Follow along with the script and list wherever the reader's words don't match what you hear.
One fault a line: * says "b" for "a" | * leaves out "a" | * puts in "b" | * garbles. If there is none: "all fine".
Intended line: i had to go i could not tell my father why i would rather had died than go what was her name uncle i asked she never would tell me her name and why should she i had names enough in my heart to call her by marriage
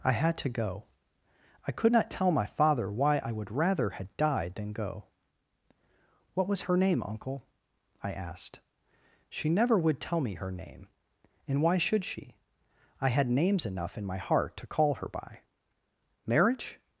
all fine